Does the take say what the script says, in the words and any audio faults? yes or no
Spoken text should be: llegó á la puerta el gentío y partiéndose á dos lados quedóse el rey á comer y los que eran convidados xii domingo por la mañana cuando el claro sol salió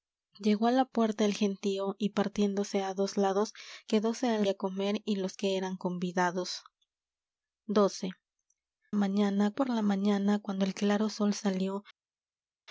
no